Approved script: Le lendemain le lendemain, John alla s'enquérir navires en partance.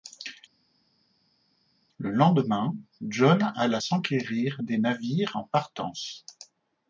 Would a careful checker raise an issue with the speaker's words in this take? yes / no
yes